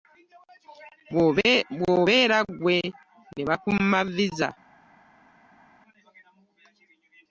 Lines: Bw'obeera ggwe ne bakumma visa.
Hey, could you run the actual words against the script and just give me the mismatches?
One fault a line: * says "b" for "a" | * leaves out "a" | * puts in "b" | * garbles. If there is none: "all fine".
all fine